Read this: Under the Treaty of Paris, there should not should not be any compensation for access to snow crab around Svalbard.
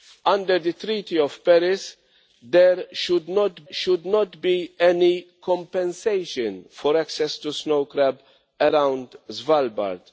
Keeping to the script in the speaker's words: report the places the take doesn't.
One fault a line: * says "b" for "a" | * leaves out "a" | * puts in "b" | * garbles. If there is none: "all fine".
all fine